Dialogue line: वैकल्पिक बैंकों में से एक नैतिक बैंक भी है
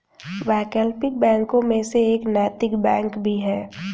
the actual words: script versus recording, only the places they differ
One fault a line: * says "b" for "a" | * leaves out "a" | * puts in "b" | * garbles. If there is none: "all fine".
all fine